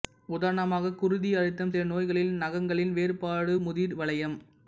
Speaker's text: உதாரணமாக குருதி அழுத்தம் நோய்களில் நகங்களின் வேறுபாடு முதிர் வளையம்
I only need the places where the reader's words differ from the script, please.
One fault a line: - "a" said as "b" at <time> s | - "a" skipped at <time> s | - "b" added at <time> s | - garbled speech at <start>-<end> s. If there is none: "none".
- "சில" added at 1.7 s